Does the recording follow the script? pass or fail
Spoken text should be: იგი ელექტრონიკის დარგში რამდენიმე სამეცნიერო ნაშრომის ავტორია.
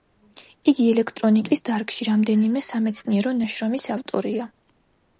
pass